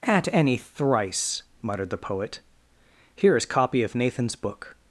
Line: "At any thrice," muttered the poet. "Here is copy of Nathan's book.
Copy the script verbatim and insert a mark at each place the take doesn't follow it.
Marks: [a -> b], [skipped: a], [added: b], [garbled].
"At any thrice," muttered the poet. "Here is copy of Nathan's book.